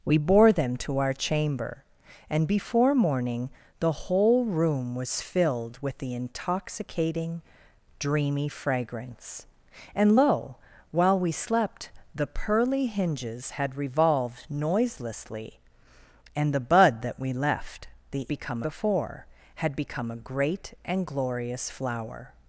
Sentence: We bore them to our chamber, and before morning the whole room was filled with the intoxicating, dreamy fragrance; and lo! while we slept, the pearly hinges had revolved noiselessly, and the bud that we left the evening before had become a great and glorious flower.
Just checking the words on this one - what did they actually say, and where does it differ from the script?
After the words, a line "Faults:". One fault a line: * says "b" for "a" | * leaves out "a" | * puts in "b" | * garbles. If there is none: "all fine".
We bore them to our chamber, and before morning the whole room was filled with the intoxicating, dreamy fragrance; and lo! while we slept, the pearly hinges had revolved noiselessly, and the bud that we left the become before had become a great and glorious flower.
Faults:
* says "become" for "evening"